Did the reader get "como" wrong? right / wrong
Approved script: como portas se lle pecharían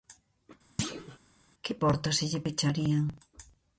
wrong